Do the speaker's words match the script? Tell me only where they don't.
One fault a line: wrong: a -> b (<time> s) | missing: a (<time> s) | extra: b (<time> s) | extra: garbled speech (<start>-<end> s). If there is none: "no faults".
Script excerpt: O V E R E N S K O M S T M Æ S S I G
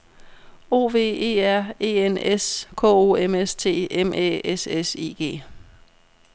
no faults